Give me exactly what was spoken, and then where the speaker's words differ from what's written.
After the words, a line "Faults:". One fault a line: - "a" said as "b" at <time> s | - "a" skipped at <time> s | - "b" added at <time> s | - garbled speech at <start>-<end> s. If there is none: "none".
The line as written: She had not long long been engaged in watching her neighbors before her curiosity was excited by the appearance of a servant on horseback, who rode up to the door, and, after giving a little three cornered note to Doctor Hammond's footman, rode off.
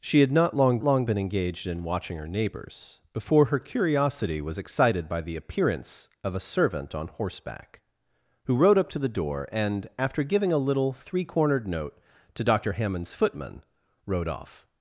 She had not long long been engaged in watching her neighbors before her curiosity was excited by the appearance of a servant on horseback, who rode up to the door, and, after giving a little three cornered note to Doctor Hammond's footman, rode off.
Faults:
none